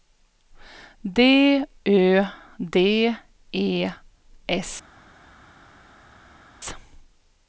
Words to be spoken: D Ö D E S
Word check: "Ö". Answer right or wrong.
right